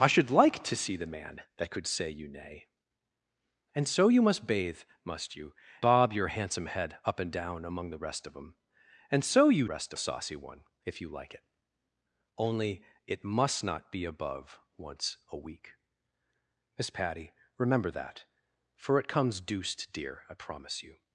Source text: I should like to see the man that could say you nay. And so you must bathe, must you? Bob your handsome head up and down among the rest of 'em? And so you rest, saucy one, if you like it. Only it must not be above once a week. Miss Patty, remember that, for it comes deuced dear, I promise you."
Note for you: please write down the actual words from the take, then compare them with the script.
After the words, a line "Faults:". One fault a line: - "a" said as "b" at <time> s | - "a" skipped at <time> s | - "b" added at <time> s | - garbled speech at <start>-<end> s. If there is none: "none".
I should like to see the man that could say you nay. And so you must bathe, must you? Bob your handsome head up and down among the rest of 'em? And so you rest, saucy one, if you like it. Only it must not be above once a week. Miss Patty, remember that, for it comes deuced dear, I promise you."
Faults:
none